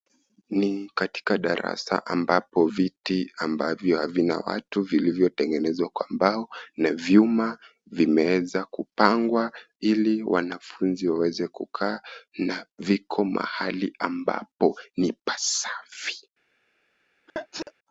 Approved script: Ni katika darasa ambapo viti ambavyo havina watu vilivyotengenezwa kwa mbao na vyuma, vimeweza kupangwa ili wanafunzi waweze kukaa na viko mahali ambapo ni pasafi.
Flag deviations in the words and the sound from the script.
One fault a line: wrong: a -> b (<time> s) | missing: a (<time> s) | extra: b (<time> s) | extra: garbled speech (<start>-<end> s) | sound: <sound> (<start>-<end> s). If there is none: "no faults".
sound: sneeze (17.3-17.7 s)